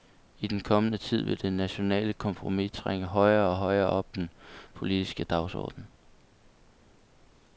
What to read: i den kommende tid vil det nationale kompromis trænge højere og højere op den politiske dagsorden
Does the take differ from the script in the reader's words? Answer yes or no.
no